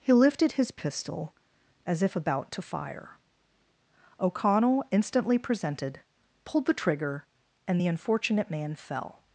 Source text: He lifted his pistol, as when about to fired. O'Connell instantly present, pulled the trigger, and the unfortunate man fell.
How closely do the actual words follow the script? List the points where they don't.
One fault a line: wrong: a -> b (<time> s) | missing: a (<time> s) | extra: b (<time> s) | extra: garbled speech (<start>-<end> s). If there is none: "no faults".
wrong: when -> if (2.0 s)
wrong: fired -> fire (2.6 s)
wrong: present -> presented (5.4 s)